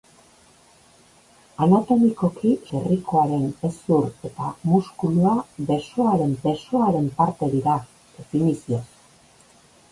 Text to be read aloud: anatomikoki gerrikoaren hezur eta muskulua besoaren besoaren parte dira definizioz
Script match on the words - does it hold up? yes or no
yes